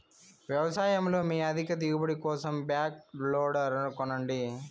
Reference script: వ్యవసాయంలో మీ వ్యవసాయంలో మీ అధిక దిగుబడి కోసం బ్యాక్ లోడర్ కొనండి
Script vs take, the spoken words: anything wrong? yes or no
yes